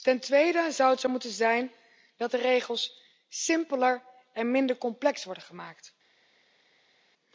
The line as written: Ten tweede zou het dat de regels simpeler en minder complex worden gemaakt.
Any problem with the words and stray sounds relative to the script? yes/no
yes